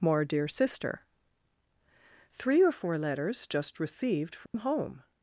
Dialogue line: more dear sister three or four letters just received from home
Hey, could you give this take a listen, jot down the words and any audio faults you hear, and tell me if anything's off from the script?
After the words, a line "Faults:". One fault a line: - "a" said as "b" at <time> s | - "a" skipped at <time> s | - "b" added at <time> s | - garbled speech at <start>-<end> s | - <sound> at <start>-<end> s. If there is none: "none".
more dear sister three or four letters just received from home
Faults:
- dropout at 4.5-4.5 s